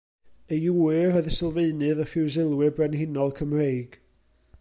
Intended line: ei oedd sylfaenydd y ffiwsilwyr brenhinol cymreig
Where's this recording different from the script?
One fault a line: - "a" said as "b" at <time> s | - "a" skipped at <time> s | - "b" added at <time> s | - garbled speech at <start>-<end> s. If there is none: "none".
- "ŵyr" added at 0.8 s